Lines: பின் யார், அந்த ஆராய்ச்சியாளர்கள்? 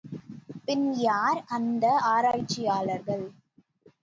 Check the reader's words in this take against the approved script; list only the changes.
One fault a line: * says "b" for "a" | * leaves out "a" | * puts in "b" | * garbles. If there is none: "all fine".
all fine